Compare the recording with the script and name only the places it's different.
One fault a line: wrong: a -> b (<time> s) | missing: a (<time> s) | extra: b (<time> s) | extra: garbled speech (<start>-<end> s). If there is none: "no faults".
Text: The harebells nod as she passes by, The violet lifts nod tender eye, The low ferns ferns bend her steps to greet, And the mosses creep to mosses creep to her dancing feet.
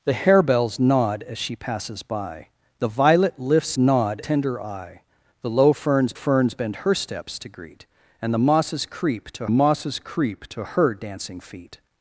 no faults